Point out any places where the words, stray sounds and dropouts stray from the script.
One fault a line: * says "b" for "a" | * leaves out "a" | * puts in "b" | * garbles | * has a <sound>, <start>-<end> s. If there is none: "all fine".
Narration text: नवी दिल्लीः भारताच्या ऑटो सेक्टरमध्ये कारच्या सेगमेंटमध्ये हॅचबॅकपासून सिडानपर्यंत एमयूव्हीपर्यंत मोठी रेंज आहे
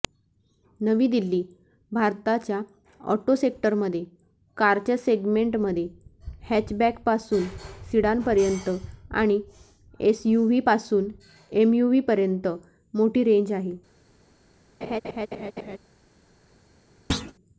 * puts in "आणि एसयूव्हीपासून"
* has a laugh, 14.8-15.8 s
* has a thud, 17.1-17.3 s